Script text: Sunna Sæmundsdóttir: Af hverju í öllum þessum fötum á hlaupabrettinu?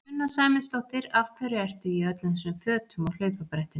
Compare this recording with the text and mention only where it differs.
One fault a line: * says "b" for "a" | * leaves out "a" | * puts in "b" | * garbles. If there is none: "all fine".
* puts in "ertu"